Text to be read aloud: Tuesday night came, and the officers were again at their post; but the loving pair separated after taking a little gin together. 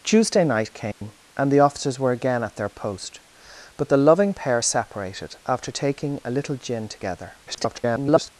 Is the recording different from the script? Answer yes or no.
yes